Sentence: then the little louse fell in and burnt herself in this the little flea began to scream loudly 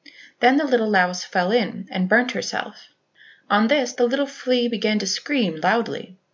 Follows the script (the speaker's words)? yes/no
no